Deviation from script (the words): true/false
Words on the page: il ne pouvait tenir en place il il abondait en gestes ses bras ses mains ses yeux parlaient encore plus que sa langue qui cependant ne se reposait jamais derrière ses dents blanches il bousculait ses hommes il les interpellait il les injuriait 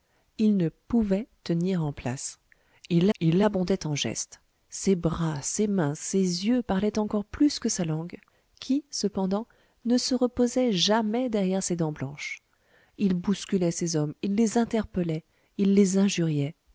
false